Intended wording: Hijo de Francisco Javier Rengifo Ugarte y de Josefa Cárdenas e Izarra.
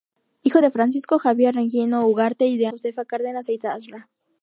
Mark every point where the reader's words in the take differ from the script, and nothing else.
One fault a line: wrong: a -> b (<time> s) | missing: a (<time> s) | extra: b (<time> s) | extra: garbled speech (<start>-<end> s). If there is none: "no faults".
no faults